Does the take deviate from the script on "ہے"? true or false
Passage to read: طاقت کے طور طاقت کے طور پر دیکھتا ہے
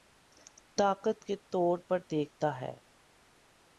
false